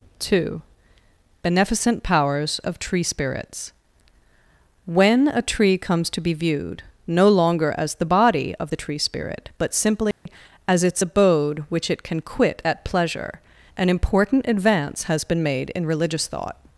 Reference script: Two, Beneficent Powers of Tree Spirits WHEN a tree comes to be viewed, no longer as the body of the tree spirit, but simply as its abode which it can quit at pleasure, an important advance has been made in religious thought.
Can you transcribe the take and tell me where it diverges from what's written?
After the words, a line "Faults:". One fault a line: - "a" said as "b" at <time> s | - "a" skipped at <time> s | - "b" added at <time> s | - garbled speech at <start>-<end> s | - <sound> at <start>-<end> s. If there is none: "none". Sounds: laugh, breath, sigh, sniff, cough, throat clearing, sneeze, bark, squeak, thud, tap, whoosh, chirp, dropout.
Two, Beneficent Powers of Tree Spirits WHEN a tree comes to be viewed, no longer as the body of the tree spirit, but simply as its abode which it can quit at pleasure, an important advance has been made in religious thought.
Faults:
- dropout at 10.1-10.3 s